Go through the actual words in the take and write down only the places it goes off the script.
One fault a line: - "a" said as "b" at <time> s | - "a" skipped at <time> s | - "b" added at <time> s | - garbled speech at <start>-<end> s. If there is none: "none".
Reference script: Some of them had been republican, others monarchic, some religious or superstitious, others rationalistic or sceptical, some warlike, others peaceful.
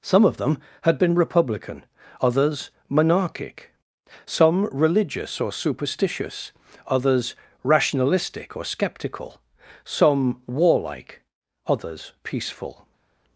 none